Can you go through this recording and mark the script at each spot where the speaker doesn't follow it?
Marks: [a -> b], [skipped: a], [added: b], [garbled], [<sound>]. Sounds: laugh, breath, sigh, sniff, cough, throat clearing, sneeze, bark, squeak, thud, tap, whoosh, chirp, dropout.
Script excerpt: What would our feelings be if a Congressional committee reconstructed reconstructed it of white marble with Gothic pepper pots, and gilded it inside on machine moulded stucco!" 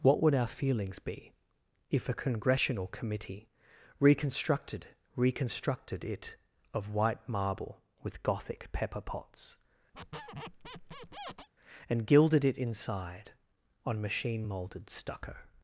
What would our feelings be if a Congressional committee reconstructed reconstructed it of white marble with Gothic pepper pots, [squeak] and gilded it inside on machine moulded stucco!"